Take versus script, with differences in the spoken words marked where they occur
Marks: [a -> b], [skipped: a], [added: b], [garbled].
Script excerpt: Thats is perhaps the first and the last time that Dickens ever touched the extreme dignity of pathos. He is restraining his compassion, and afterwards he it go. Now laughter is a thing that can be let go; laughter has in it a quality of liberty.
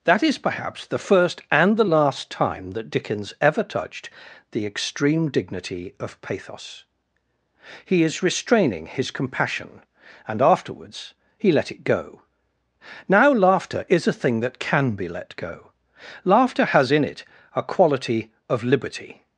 [Thats -> That] is perhaps the first and the last time that Dickens ever touched the extreme dignity of pathos. He is restraining his compassion, and afterwards he [added: let] it go. Now laughter is a thing that can be let go; laughter has in it a quality of liberty.